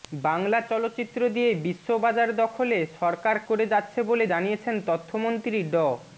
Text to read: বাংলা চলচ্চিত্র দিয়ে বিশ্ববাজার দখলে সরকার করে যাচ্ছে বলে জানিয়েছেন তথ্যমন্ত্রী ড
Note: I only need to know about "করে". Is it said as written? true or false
true